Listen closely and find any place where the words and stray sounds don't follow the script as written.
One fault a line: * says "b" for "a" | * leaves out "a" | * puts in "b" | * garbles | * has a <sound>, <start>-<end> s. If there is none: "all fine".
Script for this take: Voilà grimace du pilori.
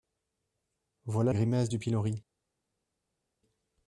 all fine